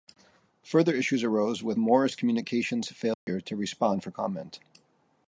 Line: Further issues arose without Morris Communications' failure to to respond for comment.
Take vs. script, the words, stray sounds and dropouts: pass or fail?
fail